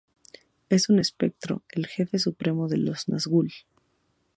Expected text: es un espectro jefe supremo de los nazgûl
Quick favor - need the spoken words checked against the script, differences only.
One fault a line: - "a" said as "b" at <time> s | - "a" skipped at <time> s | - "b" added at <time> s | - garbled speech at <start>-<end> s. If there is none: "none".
- "el" added at 1.7 s